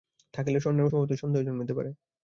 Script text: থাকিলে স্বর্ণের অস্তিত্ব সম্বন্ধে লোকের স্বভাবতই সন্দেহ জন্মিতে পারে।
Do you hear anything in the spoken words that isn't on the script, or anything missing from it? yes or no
yes